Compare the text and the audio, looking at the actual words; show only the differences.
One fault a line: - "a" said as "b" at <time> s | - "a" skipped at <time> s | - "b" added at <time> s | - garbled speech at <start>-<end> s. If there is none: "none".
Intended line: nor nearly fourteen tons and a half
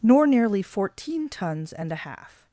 none